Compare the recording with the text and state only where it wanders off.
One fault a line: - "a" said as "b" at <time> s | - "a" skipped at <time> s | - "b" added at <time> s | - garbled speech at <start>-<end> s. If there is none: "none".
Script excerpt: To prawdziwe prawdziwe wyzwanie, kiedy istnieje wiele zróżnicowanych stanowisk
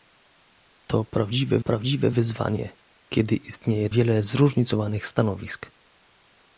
none